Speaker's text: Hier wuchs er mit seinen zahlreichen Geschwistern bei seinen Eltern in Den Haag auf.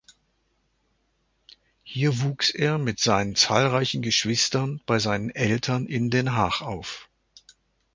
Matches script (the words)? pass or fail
pass